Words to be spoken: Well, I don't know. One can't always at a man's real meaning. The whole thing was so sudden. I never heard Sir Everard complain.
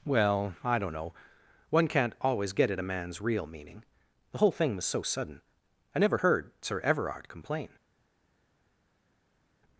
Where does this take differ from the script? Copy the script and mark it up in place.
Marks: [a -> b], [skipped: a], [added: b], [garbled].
Well, I don't know. One can't always [added: get] at a man's real meaning. The whole thing was so sudden. I never heard Sir Everard complain.